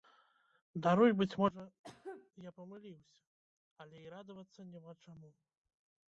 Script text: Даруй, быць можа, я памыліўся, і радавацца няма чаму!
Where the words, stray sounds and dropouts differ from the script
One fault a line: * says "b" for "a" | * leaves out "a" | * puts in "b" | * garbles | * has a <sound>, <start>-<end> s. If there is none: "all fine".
* has a cough, 1.8-2.3 s
* puts in "але"